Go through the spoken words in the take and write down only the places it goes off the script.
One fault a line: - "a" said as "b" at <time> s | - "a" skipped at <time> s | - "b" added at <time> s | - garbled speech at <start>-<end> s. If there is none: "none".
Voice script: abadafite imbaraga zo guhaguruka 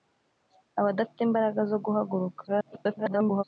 - garbled speech at 2.5-3.4 s